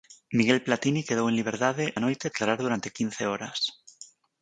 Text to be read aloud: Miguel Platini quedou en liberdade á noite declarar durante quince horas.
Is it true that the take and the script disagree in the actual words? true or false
false